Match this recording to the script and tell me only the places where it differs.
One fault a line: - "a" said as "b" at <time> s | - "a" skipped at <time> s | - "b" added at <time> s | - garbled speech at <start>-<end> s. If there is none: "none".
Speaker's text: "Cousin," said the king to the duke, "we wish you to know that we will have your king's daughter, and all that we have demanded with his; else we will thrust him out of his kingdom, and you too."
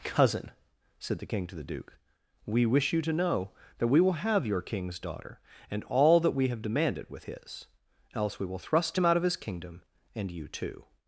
none